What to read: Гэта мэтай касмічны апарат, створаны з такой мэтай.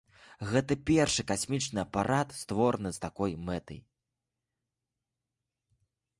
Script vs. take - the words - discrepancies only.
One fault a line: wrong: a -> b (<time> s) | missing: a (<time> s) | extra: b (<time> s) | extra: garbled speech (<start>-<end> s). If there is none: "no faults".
wrong: мэтай -> першы (0.9 s)